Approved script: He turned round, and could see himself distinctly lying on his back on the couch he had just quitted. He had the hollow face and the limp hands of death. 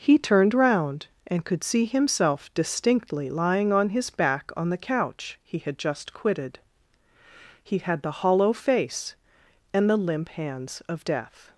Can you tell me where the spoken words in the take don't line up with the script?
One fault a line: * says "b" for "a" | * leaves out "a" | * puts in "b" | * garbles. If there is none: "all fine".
all fine